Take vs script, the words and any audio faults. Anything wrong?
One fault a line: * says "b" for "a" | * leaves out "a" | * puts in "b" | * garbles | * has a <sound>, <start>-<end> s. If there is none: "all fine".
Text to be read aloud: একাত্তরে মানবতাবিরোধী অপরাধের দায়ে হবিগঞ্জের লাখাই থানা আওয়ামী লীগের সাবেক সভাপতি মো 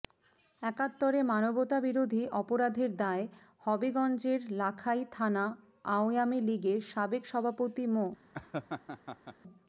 * has a laugh, 8.3-9.4 s